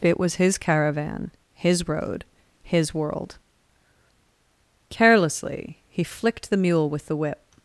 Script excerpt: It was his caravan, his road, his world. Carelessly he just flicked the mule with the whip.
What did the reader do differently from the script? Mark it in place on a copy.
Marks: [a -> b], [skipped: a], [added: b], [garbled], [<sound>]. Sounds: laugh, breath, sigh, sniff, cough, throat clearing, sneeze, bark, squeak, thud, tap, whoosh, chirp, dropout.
It was his caravan, his road, his world. Carelessly he [skipped: just] flicked the mule with the whip.